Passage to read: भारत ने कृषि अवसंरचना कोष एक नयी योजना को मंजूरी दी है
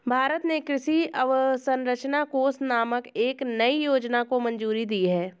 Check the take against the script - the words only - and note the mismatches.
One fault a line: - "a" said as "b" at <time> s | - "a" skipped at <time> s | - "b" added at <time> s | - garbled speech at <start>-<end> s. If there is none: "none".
- "नामक" added at 2.6 s